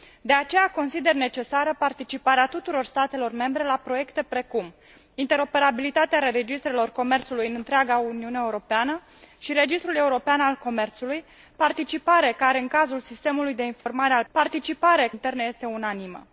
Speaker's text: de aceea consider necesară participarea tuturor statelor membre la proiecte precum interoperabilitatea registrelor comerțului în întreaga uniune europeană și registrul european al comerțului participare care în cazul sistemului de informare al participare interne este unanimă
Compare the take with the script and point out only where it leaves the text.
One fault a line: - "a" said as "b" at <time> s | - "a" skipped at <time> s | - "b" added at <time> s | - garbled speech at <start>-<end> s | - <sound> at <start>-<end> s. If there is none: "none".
- dropout at 13.8-13.9 s